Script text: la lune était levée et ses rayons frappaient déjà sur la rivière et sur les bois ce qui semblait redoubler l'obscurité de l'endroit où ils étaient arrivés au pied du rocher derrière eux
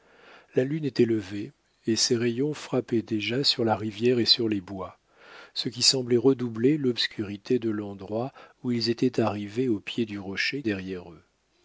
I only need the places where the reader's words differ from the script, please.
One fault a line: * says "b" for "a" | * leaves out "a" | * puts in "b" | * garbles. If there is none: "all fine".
all fine